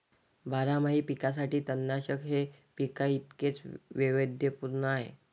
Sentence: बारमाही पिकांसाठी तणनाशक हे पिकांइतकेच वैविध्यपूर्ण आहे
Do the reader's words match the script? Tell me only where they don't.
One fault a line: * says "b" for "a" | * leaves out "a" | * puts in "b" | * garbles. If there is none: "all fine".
all fine